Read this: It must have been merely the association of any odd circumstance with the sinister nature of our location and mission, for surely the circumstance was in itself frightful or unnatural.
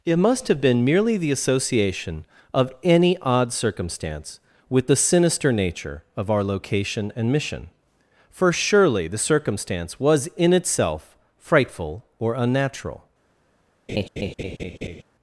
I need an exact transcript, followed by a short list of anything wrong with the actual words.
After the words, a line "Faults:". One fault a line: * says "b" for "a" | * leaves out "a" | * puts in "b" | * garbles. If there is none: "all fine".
It must have been merely the association of any odd circumstance with the sinister nature of our location and mission, for surely the circumstance was in itself frightful or unnatural.
Faults:
all fine